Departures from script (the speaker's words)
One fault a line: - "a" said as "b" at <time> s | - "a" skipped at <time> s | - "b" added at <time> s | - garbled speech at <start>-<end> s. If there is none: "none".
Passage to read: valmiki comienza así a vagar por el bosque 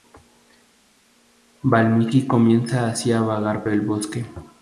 - "por" skipped at 3.6 s